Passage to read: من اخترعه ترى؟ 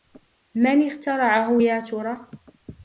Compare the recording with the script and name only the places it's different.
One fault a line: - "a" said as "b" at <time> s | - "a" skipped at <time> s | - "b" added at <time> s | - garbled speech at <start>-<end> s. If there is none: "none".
- "يا" added at 1.6 s